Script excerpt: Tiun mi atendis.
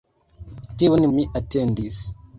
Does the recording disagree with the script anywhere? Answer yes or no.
no